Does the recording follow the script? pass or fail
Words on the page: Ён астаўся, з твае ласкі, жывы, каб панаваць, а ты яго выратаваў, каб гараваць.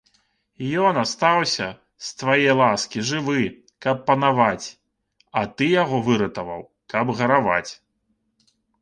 pass